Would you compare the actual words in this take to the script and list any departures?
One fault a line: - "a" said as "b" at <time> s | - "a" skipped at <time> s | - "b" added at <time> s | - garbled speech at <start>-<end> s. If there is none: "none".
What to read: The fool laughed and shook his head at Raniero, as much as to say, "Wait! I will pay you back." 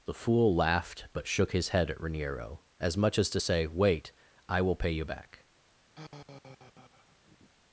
- "and" said as "but" at 1.1 s